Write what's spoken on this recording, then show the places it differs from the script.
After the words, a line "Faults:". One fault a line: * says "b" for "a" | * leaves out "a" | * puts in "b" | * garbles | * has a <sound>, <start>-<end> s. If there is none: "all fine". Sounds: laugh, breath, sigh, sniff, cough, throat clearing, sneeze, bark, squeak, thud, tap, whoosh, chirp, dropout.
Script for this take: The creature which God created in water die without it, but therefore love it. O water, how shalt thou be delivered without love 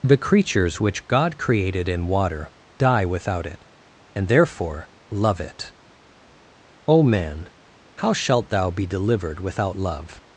The creatures which God created in water die without it, and therefore love it. O man, how shalt thou be delivered without love
Faults:
* says "creatures" for "creature"
* says "and" for "but"
* says "man" for "water"